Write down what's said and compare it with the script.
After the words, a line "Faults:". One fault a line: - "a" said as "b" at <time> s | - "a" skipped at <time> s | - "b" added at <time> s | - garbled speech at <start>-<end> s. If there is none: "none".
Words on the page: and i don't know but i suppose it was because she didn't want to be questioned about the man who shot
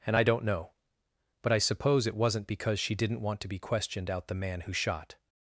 and i don't know but i suppose it wasn't because she didn't want to be questioned out the man who shot
Faults:
- "was" said as "wasn't" at 2.1 s
- "about" said as "out" at 4.1 s